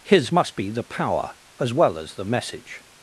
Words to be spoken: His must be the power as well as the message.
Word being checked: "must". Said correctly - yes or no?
yes